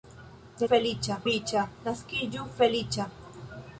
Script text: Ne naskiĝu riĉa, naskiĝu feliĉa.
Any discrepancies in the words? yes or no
yes